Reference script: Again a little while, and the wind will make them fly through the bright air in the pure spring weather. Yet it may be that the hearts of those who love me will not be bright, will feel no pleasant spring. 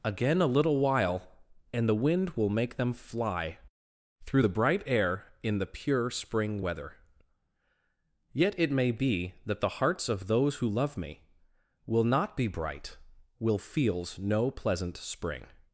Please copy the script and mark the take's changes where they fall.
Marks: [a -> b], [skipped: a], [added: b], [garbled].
Again a little while, and the wind will make them fly through the bright air in the pure spring weather. Yet it may be that the hearts of those who love me will not be bright, will [feel -> feels] no pleasant spring.